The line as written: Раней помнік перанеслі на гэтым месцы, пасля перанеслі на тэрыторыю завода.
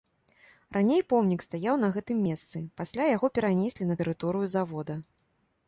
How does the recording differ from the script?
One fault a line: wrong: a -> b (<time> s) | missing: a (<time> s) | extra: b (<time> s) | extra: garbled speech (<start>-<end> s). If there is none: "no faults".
wrong: перанеслі -> стаяў (1.5 s)
extra: яго (3.1 s)